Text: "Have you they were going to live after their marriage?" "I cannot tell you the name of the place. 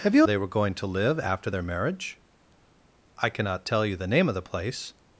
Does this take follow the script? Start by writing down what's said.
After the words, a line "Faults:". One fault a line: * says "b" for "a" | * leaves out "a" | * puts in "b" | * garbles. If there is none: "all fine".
"Have you they were going to live after their marriage?" "I cannot tell you the name of the place.
Faults:
all fine